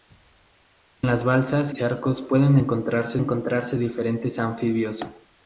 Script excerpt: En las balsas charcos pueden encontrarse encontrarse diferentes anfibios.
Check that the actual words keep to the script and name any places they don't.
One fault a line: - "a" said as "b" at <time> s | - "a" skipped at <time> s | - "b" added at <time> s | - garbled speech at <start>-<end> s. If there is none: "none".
none